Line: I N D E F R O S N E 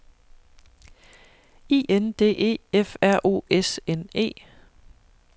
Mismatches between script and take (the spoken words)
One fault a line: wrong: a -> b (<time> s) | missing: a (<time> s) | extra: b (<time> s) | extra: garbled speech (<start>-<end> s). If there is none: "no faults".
no faults